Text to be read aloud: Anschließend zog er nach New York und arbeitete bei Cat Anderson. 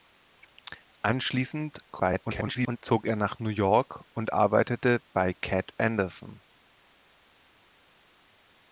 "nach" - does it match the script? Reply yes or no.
yes